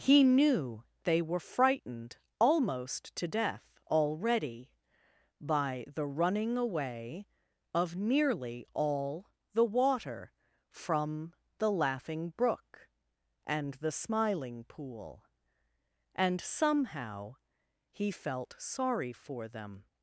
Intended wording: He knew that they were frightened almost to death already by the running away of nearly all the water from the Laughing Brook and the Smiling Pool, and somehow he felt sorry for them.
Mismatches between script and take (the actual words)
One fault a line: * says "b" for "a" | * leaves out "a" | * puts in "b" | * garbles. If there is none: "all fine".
* leaves out "that"